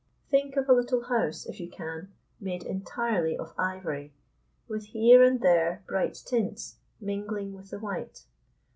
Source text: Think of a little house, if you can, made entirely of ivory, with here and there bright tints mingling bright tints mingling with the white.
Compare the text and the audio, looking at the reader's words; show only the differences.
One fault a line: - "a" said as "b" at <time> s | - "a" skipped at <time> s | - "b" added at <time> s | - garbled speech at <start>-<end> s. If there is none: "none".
- "bright tints mingling" skipped at 7.5 s